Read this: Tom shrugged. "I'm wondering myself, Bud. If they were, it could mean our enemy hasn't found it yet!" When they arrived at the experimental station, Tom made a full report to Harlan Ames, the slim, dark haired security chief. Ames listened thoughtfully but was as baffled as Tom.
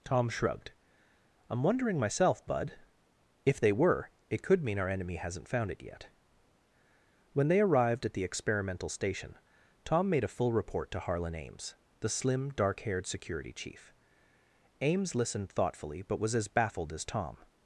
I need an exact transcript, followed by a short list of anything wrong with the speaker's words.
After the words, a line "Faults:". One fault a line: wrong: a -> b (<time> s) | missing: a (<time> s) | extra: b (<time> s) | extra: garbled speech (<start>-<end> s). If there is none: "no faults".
Tom shrugged. "I'm wondering myself, Bud. If they were, it could mean our enemy hasn't found it yet!" When they arrived at the experimental station, Tom made a full report to Harlan Ames, the slim, dark haired security chief. Ames listened thoughtfully but was as baffled as Tom.
Faults:
no faults